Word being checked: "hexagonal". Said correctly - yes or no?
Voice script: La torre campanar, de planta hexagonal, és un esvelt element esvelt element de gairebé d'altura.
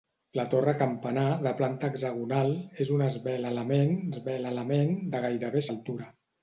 yes